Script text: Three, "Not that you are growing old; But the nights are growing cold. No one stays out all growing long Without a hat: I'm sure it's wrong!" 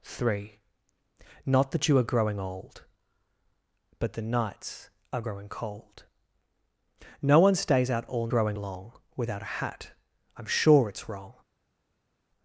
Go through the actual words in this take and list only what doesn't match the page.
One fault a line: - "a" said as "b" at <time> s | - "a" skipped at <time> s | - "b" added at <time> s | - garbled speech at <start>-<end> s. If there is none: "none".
none